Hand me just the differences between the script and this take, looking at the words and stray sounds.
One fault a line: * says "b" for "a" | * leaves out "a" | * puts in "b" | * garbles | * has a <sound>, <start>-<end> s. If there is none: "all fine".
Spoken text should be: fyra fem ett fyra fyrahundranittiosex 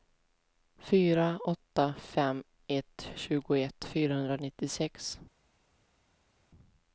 * puts in "åtta"
* says "tjugoett" for "fyra"